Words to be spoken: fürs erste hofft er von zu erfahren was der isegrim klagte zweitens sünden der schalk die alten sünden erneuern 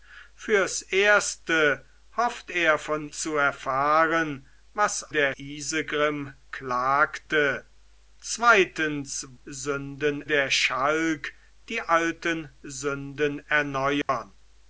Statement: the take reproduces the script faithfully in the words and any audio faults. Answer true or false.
false